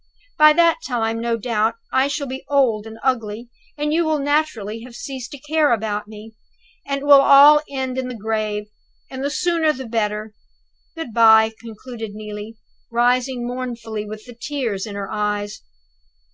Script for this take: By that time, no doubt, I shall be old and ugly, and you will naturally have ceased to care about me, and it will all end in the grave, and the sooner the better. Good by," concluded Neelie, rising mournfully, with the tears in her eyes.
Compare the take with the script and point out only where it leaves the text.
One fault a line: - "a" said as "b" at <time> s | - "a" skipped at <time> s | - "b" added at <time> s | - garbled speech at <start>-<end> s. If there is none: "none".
none